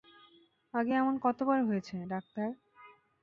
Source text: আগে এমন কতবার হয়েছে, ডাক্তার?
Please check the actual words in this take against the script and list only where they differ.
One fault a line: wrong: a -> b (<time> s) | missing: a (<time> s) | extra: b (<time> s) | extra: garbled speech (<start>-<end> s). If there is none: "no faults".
no faults